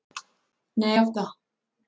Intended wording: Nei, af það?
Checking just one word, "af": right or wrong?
right